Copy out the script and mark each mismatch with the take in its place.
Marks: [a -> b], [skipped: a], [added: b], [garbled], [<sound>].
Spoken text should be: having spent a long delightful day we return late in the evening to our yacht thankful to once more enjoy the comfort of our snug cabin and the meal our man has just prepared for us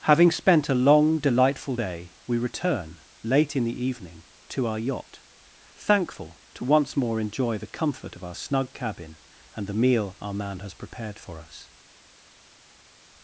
having spent a long delightful day we return late in the evening to our yacht thankful to once more enjoy the comfort of our snug cabin and the meal our man has [skipped: just] prepared for us